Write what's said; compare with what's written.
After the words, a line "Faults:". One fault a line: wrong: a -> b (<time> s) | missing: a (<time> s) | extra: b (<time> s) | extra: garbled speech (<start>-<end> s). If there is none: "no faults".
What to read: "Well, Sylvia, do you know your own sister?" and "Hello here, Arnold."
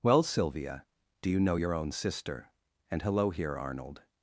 "Well, Sylvia, do you know your own sister?" and "Hello here, Arnold."
Faults:
no faults